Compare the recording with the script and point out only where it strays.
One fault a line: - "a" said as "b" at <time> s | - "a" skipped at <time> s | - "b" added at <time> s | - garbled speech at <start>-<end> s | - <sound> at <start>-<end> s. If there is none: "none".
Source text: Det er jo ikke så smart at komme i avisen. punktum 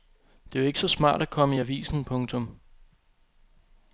none